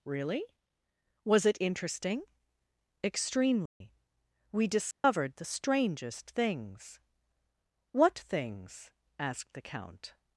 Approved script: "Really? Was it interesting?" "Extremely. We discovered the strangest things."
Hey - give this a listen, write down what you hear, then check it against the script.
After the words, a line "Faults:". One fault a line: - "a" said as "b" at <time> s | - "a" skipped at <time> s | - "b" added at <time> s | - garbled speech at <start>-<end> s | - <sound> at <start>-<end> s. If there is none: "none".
"Really? Was it interesting?" "Extremely. We discovered the strangest things." "What things?" asked the count
Faults:
- dropout at 3.7-3.8 s
- dropout at 4.9-5.0 s
- "What things asked the count" added at 7.9 s